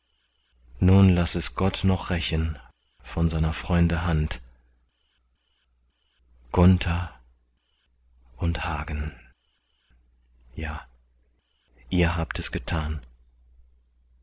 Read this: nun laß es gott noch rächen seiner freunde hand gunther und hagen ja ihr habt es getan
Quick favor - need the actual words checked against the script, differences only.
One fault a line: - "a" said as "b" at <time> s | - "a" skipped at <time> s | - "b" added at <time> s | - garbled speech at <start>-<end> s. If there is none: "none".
- "von" added at 3.0 s